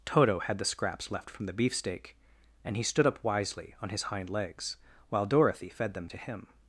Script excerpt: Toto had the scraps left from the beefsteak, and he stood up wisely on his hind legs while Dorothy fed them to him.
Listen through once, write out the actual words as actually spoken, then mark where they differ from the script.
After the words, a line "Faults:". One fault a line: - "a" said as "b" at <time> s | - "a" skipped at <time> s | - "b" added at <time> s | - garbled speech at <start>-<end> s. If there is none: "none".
Toto had the scraps left from the beefsteak, and he stood up wisely on his hind legs while Dorothy fed them to him.
Faults:
none